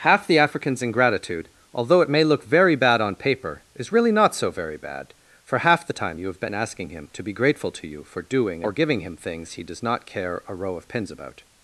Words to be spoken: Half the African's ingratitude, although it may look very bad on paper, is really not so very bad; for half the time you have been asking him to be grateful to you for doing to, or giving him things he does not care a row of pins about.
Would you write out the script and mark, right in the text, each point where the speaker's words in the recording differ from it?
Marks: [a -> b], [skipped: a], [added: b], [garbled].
Half the African's ingratitude, although it may look very bad on paper, is really not so very bad; for half the time you have been asking him to be grateful to you for doing [skipped: to,] or giving him things he does not care a row of pins about.